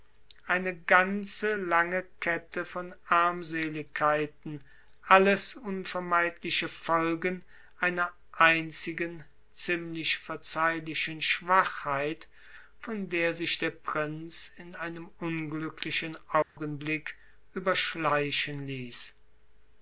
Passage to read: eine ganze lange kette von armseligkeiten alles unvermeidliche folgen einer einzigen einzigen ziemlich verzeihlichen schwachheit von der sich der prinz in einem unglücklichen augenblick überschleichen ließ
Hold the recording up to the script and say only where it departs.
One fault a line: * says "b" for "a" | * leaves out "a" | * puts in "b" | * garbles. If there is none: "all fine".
* leaves out "einzigen"